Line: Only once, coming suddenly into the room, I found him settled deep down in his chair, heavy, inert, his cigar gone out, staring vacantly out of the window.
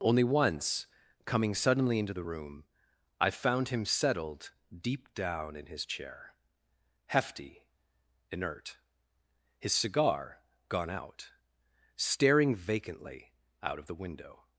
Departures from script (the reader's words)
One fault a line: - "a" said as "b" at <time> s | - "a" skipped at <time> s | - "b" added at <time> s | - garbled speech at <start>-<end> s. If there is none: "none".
- "heavy" said as "hefty" at 7.1 s